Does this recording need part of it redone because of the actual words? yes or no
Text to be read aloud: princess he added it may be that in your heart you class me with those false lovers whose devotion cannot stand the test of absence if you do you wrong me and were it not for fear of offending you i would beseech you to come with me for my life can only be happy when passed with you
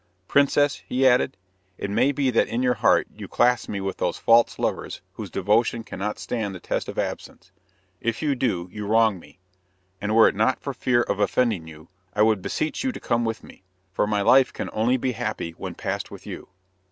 no